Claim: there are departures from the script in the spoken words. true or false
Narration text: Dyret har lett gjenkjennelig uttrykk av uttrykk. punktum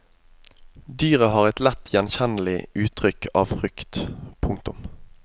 true